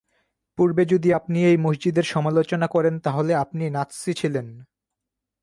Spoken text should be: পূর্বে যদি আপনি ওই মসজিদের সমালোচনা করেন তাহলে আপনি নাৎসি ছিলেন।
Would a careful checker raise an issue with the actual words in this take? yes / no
yes